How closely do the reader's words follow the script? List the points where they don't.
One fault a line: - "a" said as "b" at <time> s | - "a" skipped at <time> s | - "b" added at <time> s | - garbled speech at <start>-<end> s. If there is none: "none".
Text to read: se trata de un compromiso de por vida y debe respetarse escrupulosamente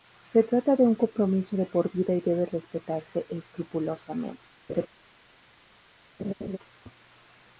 none